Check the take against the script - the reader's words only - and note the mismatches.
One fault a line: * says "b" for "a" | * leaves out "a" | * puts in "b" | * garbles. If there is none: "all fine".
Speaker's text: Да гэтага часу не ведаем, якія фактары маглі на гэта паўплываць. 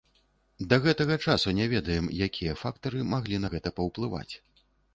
all fine